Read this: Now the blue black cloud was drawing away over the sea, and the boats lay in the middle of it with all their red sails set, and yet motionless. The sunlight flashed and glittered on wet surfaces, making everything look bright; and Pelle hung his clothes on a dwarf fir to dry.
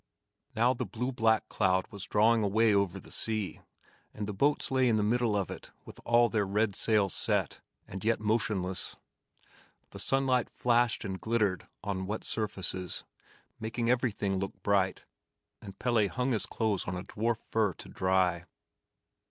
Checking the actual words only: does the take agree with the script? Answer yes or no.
yes